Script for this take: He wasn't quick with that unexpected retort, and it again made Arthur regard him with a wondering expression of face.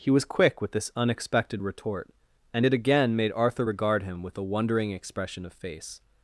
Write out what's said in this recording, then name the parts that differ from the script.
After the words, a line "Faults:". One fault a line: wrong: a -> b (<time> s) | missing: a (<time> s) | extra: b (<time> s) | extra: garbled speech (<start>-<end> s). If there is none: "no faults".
He was quick with this unexpected retort, and it again made Arthur regard him with a wondering expression of face.
Faults:
wrong: wasn't -> was (0.1 s)
wrong: that -> this (0.7 s)